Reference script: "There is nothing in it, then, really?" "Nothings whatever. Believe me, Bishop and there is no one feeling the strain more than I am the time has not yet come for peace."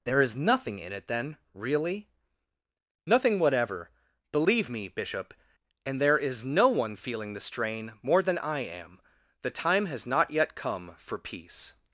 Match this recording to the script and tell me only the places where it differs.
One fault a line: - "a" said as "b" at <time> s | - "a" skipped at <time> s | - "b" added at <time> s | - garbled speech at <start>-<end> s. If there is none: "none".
- "Nothings" said as "Nothing" at 3.0 s